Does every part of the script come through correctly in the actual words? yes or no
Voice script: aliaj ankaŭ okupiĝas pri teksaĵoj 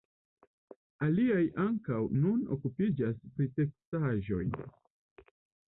no